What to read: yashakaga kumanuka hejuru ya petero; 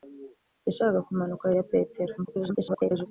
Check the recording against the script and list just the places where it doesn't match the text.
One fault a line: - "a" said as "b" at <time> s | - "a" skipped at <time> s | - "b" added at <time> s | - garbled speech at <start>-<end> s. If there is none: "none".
- "hejuru" skipped at 1.5 s
- garbled speech at 2.2-3.1 s